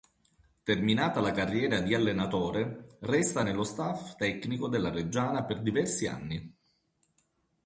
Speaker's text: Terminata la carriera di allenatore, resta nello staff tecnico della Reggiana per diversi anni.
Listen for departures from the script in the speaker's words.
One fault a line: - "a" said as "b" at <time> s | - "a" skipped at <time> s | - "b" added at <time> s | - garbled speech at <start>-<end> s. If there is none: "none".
none